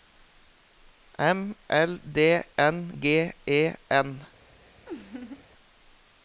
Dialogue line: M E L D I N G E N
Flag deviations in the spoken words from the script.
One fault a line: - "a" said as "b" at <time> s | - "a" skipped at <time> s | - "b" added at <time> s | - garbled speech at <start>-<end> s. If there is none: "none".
- "E" skipped at 1.6 s
- "I" skipped at 2.2 s